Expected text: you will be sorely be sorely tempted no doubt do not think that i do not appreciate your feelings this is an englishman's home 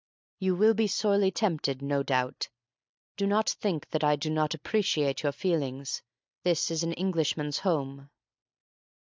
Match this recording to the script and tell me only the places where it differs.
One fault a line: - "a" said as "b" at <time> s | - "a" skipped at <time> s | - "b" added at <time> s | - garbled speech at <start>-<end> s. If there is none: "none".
- "be sorely" skipped at 1.3 s